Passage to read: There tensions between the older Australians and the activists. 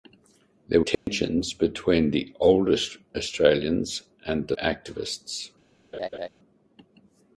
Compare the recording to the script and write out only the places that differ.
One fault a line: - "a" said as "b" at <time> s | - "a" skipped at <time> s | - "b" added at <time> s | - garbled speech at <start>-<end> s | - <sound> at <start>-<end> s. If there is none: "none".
- dropout at 0.9-1.1 s
- laugh at 5.9-6.3 s